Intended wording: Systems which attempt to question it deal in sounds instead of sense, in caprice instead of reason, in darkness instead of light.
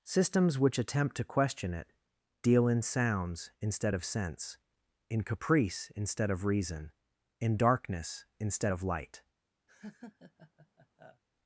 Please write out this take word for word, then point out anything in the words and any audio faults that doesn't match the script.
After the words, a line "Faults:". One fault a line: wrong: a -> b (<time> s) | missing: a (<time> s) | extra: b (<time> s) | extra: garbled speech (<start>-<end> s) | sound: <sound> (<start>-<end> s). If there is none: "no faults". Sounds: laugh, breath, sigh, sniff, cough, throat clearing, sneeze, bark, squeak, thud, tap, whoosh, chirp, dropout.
Systems which attempt to question it deal in sounds instead of sense, in caprice instead of reason, in darkness instead of light.
Faults:
sound: laugh (9.7-11.2 s)